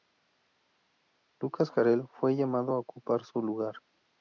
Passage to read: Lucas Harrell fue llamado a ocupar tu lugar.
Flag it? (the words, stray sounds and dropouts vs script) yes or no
yes